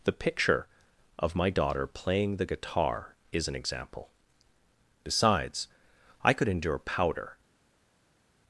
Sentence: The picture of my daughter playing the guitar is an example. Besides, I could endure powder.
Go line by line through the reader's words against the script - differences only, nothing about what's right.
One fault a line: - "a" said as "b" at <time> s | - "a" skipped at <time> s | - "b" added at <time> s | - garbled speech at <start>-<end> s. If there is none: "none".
none